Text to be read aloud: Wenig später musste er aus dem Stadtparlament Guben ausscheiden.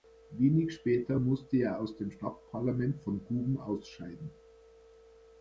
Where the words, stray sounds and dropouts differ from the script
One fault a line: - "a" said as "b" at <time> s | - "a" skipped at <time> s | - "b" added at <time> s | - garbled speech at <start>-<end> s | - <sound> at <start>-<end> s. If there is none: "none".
- "von" added at 3.0 s